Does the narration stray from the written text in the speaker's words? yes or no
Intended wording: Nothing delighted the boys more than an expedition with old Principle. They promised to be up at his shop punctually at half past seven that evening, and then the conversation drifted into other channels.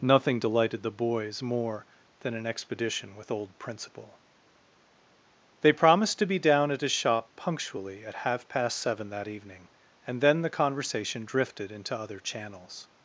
yes